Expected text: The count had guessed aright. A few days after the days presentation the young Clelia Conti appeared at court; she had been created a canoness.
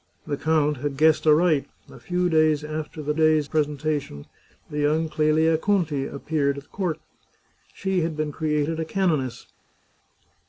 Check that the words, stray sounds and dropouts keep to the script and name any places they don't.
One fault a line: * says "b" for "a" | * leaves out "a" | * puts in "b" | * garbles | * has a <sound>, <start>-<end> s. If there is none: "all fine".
all fine